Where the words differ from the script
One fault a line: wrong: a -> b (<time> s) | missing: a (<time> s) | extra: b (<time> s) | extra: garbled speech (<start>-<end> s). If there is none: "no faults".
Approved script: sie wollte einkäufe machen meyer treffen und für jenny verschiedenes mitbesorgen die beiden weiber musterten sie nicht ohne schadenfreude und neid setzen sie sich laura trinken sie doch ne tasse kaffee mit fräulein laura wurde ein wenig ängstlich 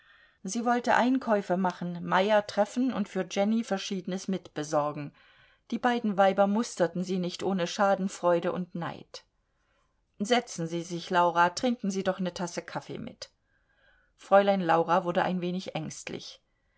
no faults